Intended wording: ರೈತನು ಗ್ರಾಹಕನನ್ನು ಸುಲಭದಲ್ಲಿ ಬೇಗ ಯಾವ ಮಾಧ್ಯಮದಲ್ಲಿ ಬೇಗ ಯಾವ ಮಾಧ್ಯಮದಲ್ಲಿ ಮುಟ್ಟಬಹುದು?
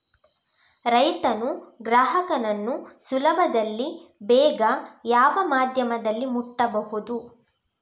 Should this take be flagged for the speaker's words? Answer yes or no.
yes